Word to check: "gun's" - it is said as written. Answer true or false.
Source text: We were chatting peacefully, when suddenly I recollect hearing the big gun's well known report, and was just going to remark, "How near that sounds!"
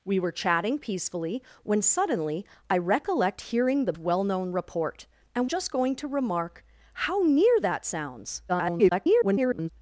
false